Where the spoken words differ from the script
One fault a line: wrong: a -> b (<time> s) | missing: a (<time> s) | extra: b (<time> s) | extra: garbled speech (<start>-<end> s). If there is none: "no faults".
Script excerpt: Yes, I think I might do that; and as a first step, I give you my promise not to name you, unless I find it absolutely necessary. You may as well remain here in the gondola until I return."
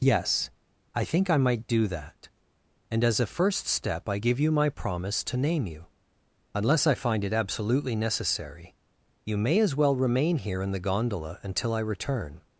missing: not (5.2 s)